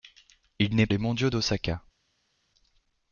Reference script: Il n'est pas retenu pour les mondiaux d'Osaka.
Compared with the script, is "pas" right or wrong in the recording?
wrong